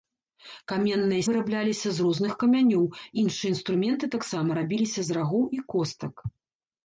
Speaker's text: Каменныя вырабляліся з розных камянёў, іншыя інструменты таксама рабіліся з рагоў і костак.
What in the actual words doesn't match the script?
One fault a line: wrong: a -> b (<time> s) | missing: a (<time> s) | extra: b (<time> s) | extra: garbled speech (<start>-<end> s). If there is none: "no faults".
no faults